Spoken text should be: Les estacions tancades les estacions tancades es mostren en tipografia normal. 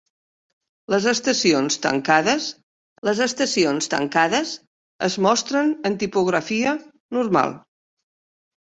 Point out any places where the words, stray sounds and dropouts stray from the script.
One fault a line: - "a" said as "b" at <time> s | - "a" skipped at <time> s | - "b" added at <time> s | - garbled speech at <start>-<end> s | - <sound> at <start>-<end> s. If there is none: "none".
none